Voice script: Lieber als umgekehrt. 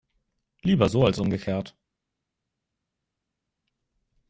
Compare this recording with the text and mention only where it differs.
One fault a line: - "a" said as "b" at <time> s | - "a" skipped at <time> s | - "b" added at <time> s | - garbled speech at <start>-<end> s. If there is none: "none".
- "so" added at 0.9 s